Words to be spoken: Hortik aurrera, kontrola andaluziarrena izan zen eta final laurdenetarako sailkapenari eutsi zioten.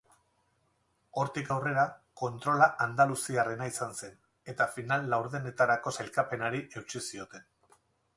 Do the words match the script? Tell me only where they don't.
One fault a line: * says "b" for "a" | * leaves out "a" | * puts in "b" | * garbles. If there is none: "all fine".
all fine